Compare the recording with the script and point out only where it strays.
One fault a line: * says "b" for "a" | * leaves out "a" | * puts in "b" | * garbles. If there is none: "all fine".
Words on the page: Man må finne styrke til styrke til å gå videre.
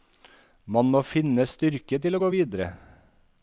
* leaves out "styrke til"